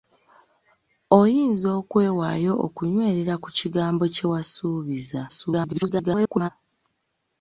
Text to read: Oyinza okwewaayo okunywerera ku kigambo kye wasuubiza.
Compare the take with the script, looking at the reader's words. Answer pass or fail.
fail